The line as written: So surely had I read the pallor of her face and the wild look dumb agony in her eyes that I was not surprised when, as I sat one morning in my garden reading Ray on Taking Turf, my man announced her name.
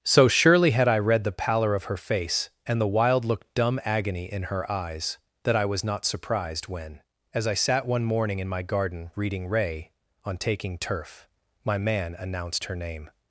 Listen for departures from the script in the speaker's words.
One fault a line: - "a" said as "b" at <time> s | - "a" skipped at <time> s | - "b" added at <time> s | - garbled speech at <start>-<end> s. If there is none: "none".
none